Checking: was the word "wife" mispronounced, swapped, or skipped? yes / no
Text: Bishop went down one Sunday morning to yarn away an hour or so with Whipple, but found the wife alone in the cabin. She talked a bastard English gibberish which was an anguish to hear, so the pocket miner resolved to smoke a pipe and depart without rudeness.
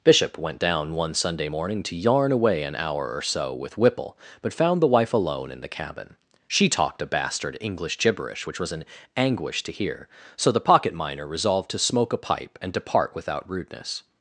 no